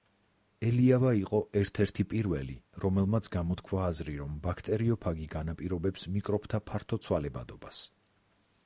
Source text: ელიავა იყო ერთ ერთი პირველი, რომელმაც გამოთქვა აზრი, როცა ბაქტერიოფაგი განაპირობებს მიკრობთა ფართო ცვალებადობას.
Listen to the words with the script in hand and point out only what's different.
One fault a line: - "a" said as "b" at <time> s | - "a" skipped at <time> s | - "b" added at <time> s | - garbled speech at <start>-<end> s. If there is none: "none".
- "როცა" said as "რომ" at 4.2 s